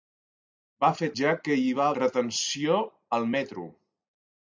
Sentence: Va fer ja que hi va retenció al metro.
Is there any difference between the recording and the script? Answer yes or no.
no